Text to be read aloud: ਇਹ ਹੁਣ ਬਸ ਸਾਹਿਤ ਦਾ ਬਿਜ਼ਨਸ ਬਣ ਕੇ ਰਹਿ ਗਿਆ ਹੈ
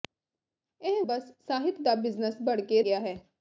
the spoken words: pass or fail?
fail